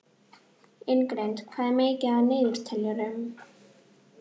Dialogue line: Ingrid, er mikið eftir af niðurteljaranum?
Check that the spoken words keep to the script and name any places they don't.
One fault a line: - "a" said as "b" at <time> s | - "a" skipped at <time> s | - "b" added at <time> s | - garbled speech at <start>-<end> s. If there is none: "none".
- "hvað" added at 1.5 s